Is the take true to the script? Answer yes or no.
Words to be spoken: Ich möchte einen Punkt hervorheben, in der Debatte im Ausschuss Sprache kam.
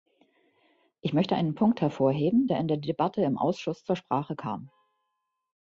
no